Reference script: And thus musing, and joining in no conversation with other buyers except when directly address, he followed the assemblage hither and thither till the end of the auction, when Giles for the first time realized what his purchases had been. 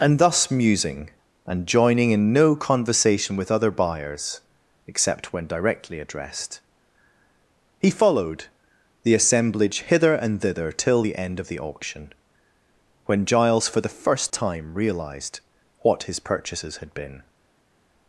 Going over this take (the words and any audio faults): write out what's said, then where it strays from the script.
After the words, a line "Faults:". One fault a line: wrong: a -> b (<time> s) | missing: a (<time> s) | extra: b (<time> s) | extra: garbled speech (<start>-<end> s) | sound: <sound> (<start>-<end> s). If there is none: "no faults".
And thus musing, and joining in no conversation with other buyers except when directly addressed, he followed the assemblage hither and thither till the end of the auction, when Giles for the first time realized what his purchases had been.
Faults:
wrong: address -> addressed (6.0 s)